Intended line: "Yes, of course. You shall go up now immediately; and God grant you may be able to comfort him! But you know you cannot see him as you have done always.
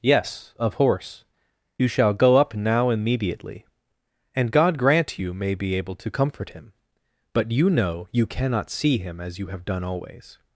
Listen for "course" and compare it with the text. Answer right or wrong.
wrong